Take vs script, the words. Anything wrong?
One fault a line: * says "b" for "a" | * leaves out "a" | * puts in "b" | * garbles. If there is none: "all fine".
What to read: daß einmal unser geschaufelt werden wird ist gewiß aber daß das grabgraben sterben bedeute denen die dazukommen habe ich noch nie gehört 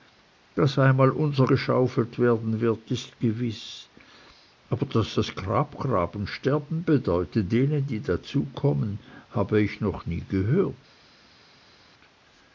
all fine